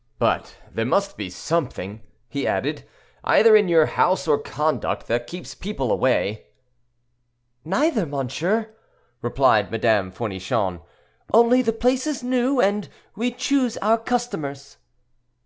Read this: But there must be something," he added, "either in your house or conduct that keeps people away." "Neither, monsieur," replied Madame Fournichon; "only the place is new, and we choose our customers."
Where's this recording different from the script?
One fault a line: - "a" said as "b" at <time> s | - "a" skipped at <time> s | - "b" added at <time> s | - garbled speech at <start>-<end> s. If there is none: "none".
none